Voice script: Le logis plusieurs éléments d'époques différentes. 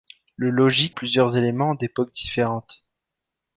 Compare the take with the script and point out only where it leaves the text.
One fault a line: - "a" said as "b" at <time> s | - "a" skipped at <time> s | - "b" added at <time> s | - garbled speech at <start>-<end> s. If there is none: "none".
none